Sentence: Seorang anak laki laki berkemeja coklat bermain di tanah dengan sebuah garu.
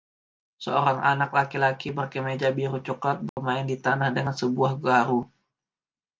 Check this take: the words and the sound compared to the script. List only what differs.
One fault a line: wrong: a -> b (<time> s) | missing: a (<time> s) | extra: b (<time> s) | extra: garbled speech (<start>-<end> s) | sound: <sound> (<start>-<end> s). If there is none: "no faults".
extra: biru (2.6 s)
sound: dropout (3.3-3.4 s)